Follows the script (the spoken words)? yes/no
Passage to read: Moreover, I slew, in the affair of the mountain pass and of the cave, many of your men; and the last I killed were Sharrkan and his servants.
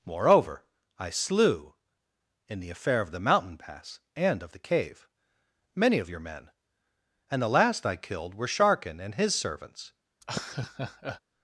yes